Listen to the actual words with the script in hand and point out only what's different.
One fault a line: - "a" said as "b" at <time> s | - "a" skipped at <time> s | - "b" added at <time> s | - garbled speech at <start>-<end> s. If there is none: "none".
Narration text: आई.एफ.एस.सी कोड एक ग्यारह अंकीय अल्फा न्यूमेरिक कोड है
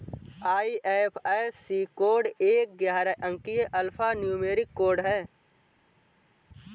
none